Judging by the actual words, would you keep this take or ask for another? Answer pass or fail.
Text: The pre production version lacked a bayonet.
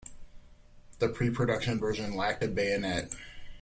pass